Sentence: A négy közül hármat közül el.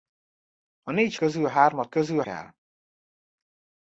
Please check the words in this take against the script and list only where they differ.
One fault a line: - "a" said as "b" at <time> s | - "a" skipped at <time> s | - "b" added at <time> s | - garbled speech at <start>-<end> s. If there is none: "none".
none